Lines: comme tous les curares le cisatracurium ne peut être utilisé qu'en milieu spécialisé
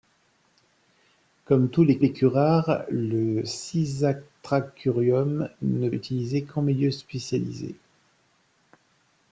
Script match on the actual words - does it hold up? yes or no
no